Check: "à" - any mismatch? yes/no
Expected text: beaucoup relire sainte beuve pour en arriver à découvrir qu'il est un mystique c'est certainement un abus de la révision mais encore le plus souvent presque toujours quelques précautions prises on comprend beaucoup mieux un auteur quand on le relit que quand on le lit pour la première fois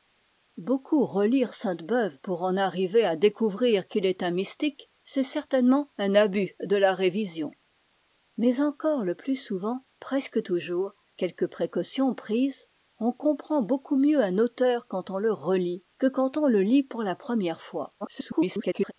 no